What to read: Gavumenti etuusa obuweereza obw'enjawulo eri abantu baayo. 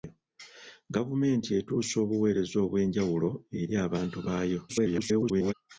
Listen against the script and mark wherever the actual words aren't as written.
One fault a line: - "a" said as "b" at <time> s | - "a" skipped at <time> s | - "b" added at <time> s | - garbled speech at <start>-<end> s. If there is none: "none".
- garbled speech at 4.7-5.5 s